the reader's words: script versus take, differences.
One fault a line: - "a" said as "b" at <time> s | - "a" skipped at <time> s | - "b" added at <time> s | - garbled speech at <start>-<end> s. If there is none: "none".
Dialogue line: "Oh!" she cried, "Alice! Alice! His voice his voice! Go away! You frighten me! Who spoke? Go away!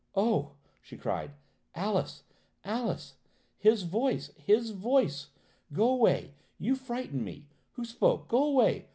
none